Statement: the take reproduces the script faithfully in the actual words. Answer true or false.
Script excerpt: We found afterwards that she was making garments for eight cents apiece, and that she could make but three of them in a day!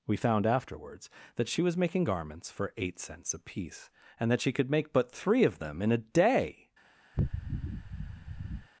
true